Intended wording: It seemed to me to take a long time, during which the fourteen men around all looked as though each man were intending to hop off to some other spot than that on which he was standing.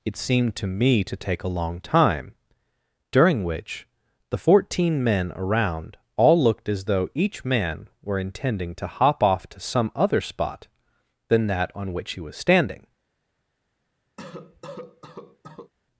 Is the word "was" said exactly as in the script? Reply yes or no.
yes